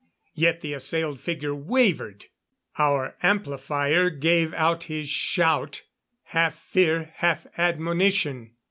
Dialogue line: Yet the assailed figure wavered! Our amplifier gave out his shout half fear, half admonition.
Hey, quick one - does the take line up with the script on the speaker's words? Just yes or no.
yes